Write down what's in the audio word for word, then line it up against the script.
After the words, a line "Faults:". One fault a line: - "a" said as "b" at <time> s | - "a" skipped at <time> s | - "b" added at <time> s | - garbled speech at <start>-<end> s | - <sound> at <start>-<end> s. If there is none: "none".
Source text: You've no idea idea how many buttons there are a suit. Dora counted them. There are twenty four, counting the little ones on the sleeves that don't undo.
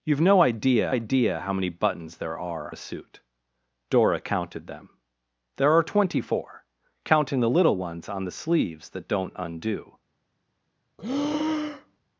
You've no idea idea how many buttons there are a suit. Dora counted them. There are twenty four, counting the little ones on the sleeves that don't undo.
Faults:
- breath at 11.0-12.0 s